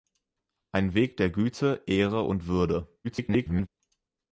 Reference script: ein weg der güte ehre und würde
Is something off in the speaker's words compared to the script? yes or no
yes